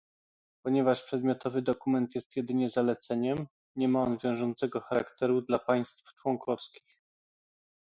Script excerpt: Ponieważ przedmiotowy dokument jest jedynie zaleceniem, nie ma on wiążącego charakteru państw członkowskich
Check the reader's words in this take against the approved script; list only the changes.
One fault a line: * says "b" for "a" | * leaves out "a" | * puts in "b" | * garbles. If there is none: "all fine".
* puts in "dla"